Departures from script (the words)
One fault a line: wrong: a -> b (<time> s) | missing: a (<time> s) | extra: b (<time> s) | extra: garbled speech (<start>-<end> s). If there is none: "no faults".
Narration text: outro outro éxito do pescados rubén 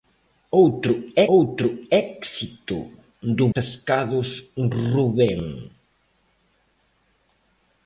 no faults